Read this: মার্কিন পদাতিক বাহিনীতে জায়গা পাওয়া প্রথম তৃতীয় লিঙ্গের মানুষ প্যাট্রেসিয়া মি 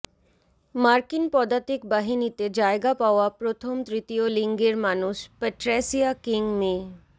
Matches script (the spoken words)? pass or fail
fail